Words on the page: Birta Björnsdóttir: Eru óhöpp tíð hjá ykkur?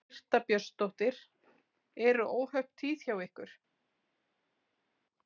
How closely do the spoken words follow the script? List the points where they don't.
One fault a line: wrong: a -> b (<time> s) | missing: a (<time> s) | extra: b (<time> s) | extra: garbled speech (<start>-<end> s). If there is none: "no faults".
no faults